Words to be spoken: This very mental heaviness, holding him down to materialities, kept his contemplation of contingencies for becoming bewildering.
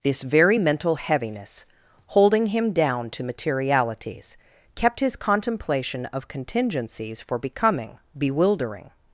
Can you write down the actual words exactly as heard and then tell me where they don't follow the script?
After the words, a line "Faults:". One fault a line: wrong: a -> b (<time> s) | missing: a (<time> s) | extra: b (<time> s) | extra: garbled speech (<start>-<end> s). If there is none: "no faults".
This very mental heaviness, holding him down to materialities, kept his contemplation of contingencies for becoming bewildering.
Faults:
no faults